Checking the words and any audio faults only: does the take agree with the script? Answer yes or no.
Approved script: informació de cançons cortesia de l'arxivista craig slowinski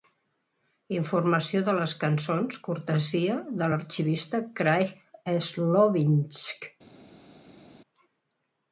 no